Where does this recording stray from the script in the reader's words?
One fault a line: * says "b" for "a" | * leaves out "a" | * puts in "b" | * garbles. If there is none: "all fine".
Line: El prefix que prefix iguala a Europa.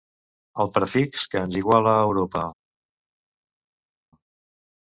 * says "ens" for "prefix"